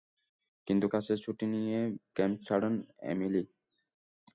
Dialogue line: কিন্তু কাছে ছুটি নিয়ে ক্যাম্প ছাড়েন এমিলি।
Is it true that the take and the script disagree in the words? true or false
false